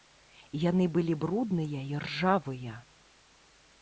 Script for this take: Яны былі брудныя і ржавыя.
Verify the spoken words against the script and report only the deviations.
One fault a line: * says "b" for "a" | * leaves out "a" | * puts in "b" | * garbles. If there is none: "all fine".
all fine